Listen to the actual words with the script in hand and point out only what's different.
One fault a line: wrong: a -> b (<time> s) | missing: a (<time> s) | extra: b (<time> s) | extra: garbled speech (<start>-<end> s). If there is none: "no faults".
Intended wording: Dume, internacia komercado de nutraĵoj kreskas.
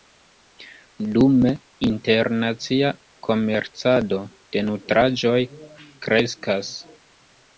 no faults